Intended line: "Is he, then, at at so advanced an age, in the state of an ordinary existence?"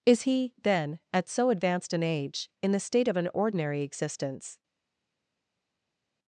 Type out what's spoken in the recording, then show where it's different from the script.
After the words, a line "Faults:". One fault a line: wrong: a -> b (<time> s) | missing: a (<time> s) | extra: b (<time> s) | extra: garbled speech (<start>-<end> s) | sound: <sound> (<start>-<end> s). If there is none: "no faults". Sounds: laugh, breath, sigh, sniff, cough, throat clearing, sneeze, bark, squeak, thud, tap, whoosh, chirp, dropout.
"Is he, then, at so advanced an age, in the state of an ordinary existence?"
Faults:
missing: at (1.3 s)